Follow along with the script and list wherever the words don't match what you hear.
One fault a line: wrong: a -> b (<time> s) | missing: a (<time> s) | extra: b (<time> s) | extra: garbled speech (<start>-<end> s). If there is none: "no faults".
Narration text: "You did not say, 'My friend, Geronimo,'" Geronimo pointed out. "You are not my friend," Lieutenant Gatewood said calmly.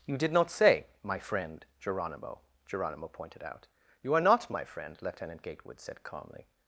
no faults